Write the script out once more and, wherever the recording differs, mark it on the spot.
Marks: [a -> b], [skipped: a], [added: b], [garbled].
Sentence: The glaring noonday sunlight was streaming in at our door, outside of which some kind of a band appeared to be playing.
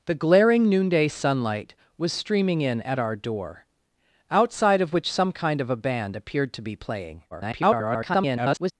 The glaring noonday sunlight was streaming in at our door, outside of which some kind of a band appeared to be playing. [garbled]